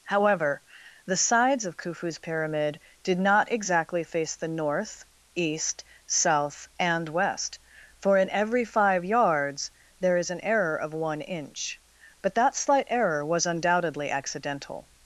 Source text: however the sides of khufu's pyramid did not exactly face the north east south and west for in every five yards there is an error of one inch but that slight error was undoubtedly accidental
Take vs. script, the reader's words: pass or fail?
pass